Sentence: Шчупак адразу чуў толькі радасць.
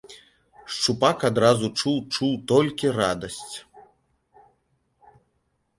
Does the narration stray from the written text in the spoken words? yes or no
yes